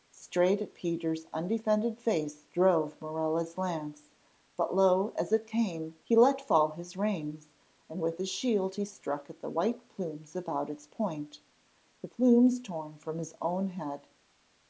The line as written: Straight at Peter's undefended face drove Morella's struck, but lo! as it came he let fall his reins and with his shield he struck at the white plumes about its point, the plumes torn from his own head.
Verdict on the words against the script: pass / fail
fail